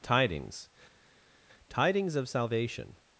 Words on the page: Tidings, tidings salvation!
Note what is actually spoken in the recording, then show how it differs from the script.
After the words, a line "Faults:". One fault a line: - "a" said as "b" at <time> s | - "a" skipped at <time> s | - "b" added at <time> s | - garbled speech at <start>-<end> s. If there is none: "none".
Tidings, tidings of salvation!
Faults:
- "of" added at 2.1 s